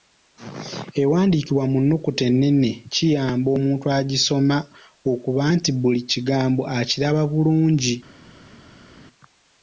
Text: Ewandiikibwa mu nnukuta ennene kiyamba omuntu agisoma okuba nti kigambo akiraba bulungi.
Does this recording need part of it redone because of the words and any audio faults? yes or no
yes